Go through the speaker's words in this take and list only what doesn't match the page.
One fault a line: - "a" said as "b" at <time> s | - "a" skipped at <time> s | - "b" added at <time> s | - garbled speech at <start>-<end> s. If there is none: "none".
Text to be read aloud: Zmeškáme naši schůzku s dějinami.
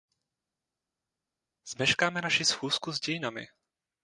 none